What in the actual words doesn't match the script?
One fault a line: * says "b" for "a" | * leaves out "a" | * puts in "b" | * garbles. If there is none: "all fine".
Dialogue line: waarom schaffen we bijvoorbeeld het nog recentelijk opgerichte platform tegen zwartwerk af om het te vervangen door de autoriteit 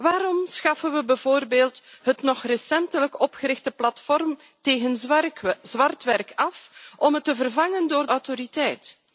* leaves out "de"